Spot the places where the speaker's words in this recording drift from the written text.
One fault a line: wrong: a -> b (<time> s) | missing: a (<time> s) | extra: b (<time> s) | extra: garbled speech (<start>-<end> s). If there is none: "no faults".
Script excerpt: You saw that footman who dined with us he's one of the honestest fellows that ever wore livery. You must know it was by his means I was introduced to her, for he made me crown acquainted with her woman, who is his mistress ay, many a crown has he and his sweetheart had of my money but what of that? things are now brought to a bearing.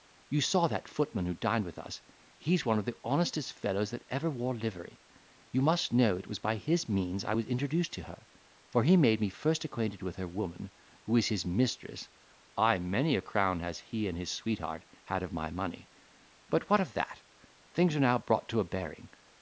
wrong: crown -> first (9.3 s)